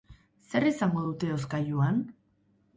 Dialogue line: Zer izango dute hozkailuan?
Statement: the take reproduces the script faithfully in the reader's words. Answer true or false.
true